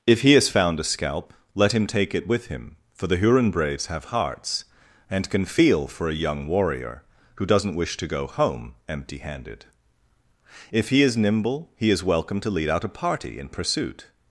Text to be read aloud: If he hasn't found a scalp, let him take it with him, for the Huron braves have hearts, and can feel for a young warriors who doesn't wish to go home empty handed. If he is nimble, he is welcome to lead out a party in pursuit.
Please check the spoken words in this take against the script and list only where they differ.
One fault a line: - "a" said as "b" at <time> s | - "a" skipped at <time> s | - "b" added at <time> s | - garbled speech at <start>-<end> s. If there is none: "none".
- "hasn't" said as "has" at 0.3 s
- "warriors" said as "warrior" at 6.5 s